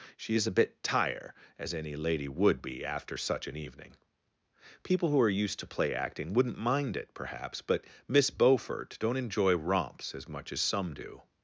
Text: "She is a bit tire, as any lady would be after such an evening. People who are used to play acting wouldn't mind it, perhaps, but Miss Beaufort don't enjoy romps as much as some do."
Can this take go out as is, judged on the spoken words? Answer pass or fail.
pass